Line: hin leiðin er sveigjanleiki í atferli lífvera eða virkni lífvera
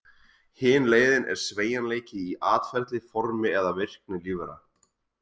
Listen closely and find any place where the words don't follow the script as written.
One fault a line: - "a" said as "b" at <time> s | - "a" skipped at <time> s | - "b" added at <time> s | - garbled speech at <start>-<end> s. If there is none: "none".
- "lífvera" said as "formi" at 3.1 s